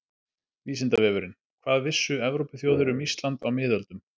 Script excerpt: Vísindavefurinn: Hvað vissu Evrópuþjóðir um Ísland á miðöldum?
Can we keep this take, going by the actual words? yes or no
yes